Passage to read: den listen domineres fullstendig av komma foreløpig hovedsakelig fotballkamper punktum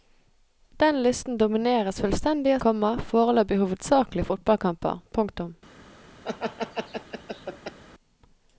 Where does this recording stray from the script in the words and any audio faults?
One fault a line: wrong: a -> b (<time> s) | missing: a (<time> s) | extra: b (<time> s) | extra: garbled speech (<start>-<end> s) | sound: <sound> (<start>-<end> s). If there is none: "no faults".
sound: laugh (6.2-7.8 s)